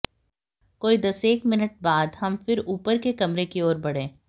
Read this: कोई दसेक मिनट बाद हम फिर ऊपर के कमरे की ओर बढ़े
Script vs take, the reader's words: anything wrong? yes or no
no